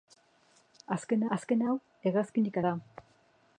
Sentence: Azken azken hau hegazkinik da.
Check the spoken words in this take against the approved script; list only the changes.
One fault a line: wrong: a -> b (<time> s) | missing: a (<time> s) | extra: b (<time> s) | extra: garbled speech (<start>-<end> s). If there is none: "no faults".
no faults